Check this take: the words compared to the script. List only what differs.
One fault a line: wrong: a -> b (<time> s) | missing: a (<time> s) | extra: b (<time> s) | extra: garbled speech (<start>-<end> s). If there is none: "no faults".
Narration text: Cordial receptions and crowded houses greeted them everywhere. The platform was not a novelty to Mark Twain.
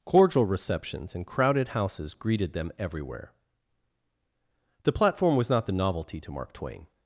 wrong: a -> the (5.7 s)